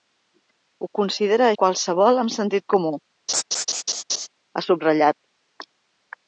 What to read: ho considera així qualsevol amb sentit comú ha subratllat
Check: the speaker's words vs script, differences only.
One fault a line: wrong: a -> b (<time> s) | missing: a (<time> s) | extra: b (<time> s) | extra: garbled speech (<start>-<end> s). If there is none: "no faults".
missing: així (1.5 s)